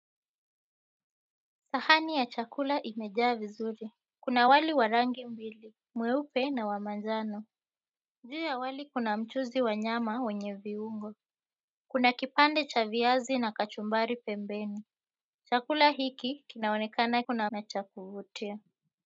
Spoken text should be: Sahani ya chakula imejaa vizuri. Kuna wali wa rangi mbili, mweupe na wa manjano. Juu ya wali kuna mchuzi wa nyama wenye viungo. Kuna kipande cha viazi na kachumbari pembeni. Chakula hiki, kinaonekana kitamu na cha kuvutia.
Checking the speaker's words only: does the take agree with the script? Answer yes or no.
no